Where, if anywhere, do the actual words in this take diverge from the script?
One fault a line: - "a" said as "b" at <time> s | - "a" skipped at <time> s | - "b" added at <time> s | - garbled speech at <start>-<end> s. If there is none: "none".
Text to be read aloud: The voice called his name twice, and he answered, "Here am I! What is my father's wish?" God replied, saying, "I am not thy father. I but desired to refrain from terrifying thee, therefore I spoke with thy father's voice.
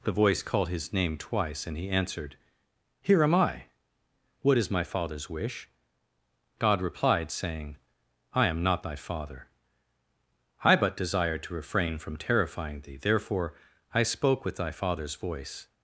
none